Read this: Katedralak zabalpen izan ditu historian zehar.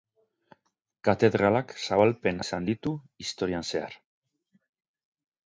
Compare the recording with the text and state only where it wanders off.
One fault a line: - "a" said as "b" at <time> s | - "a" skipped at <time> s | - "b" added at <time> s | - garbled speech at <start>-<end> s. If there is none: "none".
none